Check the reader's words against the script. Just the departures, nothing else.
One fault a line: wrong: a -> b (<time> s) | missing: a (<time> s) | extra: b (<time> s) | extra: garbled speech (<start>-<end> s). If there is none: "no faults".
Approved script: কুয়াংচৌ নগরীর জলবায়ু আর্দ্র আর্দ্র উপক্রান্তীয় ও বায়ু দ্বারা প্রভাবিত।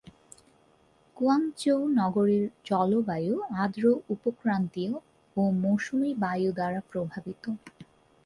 missing: আর্দ্র (3.8 s)
extra: মৌসুমী (5.6 s)